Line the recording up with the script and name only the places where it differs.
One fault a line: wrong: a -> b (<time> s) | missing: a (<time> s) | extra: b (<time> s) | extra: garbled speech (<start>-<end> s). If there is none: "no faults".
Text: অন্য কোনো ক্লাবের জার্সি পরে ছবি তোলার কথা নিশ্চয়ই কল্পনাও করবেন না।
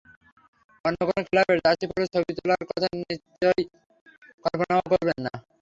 no faults